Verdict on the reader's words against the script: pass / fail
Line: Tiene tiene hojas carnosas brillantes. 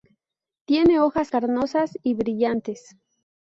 fail